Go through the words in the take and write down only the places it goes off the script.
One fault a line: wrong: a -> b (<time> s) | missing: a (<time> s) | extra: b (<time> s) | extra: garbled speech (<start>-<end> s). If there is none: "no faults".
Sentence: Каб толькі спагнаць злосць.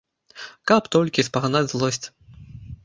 no faults